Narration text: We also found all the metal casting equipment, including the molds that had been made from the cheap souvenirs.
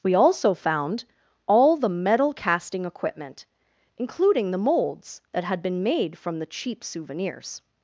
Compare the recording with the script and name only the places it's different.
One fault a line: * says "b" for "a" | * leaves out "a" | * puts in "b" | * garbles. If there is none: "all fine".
all fine